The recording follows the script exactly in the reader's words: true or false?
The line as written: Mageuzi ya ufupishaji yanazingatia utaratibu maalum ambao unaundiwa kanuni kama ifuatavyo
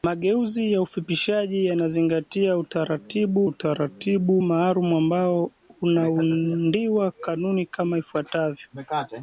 false